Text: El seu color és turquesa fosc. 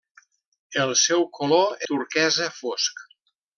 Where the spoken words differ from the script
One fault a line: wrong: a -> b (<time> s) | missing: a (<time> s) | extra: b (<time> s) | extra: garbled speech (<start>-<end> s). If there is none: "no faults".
missing: és (1.9 s)